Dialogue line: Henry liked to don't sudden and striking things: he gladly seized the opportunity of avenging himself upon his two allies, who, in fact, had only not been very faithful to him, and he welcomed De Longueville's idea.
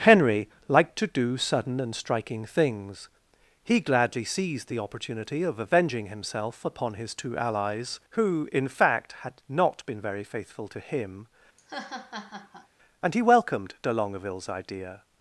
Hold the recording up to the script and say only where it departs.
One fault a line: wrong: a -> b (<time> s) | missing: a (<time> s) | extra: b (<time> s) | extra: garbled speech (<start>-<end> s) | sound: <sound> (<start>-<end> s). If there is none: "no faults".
wrong: don't -> do (1.1 s)
missing: only (9.3 s)
sound: laugh (11.6-12.7 s)